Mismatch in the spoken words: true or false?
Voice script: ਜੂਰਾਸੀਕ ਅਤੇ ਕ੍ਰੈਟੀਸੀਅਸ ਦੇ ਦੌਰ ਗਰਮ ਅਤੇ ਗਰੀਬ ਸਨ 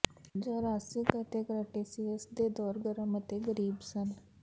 false